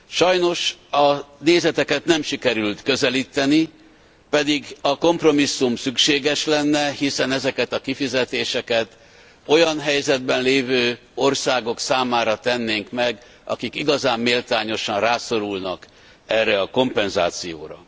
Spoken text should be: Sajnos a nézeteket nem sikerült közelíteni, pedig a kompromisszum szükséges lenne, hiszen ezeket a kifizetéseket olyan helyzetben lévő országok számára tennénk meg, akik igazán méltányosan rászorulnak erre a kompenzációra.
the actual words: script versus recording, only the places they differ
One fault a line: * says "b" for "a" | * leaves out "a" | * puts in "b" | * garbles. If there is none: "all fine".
all fine